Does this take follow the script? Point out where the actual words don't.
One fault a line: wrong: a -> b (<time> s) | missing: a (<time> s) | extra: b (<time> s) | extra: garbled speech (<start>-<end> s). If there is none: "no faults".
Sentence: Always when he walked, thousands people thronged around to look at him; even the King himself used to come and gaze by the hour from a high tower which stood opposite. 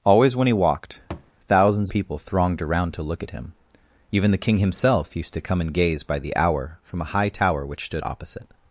no faults